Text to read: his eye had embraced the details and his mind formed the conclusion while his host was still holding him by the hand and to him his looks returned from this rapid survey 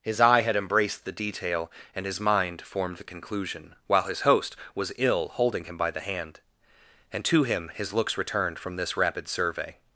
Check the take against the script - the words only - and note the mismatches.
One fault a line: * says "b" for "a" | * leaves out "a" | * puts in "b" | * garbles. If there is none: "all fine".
* says "detail" for "details"
* says "ill" for "still"